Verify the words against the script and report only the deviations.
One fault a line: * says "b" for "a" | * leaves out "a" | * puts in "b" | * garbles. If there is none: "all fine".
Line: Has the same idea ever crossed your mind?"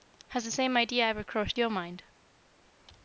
all fine